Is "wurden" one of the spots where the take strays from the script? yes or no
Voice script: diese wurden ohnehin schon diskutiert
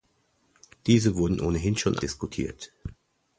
no